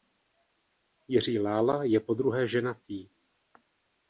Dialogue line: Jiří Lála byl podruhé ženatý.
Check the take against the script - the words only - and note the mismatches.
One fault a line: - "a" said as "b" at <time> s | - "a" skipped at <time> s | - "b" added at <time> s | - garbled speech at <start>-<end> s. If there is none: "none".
- "byl" said as "je" at 1.8 s